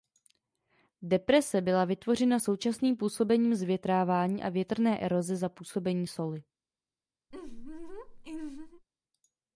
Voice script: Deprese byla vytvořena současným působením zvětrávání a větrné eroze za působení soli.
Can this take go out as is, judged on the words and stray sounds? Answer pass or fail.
fail